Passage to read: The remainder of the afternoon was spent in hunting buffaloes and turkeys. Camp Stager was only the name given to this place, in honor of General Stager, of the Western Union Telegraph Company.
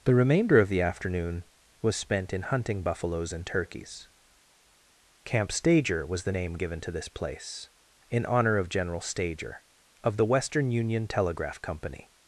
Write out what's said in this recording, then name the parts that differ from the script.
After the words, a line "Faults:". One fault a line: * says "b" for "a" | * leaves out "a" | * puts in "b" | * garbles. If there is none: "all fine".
The remainder of the afternoon was spent in hunting buffaloes and turkeys. Camp Stager was the name given to this place, in honor of General Stager, of the Western Union Telegraph Company.
Faults:
* leaves out "only"